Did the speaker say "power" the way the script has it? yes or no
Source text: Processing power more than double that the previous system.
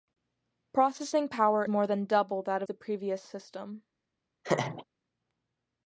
yes